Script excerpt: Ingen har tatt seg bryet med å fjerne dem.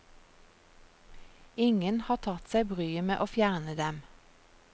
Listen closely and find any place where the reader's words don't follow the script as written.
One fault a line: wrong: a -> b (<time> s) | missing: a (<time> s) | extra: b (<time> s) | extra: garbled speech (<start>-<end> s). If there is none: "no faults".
no faults